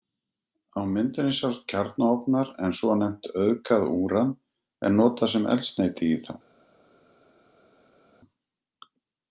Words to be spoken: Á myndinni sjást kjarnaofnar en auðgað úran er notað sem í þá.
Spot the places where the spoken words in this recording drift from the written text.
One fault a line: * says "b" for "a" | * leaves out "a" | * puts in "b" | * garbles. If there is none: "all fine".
* puts in "svonefnt"
* puts in "eldsneyti"